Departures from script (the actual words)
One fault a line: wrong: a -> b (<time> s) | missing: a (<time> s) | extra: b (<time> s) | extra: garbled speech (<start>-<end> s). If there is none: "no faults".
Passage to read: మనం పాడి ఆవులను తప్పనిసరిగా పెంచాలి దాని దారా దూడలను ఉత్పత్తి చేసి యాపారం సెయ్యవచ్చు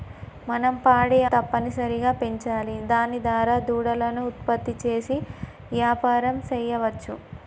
missing: ఆవులను (1.2 s)